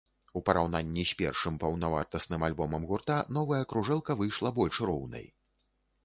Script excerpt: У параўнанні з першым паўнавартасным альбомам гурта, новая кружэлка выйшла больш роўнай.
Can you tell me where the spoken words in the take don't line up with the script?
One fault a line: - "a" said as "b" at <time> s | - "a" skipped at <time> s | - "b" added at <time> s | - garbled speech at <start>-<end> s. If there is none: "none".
none